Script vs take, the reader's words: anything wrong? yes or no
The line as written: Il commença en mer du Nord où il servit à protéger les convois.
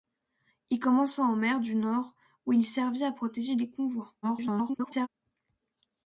yes